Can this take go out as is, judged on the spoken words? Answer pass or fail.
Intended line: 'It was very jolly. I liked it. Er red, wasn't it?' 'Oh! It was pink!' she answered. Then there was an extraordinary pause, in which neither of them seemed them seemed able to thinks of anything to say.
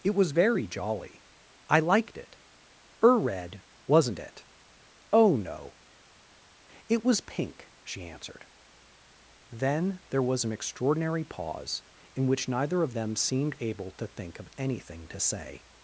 fail